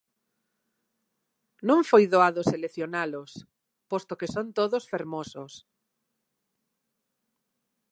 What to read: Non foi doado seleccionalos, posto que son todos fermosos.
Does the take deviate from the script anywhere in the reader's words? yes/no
no